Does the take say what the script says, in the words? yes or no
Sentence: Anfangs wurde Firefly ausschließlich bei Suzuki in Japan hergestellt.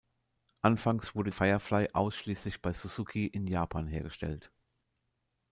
yes